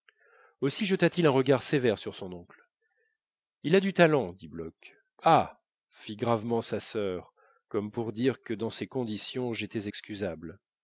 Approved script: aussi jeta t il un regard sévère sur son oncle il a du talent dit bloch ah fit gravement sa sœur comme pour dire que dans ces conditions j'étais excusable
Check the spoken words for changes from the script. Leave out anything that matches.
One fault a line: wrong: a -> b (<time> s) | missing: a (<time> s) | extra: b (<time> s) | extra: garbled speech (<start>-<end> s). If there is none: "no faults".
no faults